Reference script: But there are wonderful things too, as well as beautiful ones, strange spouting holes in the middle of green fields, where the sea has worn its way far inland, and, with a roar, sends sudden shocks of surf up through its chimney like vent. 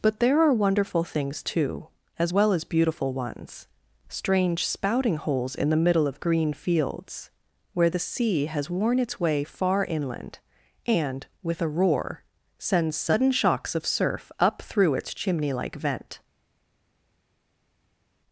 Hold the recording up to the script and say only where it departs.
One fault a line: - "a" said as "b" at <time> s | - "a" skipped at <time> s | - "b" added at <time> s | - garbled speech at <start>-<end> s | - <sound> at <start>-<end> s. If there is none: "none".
none